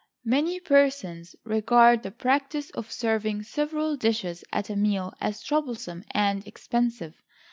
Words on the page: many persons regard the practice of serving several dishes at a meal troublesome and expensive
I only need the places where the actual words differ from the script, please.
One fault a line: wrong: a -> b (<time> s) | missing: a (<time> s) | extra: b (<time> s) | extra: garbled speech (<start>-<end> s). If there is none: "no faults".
extra: as (5.2 s)